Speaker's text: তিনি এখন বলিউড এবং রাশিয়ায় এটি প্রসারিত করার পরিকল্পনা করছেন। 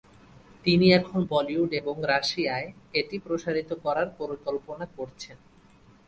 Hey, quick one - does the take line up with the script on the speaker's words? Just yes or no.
yes